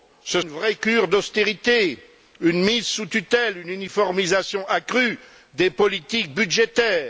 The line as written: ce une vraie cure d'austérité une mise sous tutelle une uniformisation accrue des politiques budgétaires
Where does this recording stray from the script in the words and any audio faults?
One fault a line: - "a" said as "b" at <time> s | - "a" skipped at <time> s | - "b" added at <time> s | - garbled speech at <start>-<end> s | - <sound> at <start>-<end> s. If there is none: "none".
none